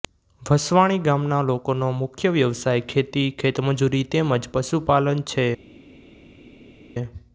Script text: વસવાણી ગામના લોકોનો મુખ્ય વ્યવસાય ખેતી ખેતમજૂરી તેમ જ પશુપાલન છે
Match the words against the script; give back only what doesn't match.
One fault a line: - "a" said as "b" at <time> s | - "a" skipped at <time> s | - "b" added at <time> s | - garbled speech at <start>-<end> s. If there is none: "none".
none